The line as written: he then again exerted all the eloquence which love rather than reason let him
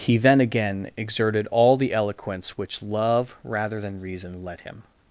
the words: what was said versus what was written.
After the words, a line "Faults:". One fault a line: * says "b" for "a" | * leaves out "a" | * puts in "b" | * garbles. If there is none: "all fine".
he then again exerted all the eloquence which love rather than reason let him
Faults:
all fine